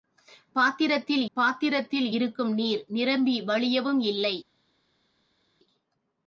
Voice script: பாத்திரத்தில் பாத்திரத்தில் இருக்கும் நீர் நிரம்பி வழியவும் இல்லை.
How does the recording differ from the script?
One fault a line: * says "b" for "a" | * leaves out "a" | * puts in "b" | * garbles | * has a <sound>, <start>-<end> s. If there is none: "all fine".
all fine